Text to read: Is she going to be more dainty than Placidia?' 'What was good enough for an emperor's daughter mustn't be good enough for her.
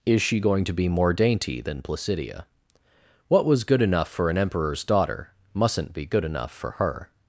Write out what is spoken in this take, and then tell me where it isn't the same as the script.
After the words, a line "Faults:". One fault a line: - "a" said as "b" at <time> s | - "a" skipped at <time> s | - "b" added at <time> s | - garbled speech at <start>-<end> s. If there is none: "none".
Is she going to be more dainty than Placidia?' 'What was good enough for an emperor's daughter mustn't be good enough for her.
Faults:
none